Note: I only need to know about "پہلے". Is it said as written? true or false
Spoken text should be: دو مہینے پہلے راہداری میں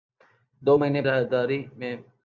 false